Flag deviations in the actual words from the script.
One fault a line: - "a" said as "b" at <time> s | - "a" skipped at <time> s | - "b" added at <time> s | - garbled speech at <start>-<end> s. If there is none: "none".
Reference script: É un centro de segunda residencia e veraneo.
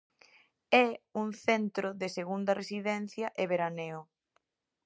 none